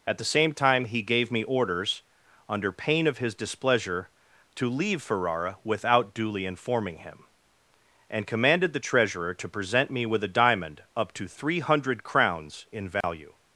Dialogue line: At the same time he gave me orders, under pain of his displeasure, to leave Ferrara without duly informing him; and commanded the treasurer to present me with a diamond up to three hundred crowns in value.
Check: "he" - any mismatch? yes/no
no